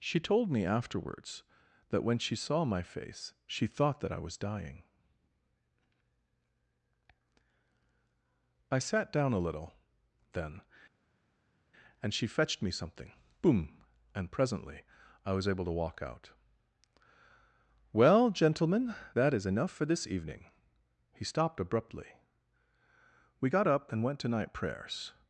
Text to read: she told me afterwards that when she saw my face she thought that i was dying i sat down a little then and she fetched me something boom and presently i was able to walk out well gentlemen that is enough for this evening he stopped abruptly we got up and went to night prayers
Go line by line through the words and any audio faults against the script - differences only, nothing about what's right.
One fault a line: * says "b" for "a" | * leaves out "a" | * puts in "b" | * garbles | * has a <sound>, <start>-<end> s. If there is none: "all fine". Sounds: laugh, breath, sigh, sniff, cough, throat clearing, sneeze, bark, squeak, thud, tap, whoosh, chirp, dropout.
all fine